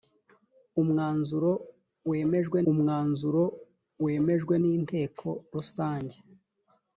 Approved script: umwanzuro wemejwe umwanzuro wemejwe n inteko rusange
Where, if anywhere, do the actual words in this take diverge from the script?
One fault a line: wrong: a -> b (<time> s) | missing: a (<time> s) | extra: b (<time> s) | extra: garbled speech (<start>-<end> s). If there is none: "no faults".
no faults